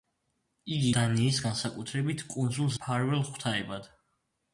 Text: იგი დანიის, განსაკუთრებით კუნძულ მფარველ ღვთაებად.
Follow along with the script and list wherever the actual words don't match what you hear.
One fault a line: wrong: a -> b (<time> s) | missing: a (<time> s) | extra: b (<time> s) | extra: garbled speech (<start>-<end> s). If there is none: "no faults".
no faults